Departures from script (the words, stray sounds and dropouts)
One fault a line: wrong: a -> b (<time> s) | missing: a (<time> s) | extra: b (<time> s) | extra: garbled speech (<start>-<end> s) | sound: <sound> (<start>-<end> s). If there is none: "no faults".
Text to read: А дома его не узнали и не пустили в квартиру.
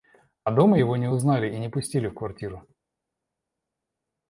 no faults